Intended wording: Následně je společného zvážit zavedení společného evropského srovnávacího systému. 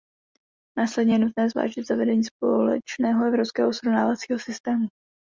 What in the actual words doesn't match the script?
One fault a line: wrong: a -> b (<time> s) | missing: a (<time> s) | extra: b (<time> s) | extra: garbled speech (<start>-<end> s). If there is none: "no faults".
wrong: společného -> nutné (1.2 s)